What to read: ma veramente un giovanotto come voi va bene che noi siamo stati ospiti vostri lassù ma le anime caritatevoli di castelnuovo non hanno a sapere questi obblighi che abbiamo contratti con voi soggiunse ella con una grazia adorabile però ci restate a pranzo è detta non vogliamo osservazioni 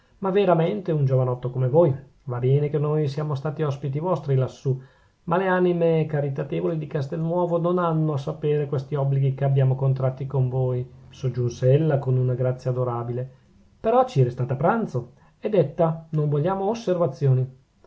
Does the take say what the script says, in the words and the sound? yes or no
yes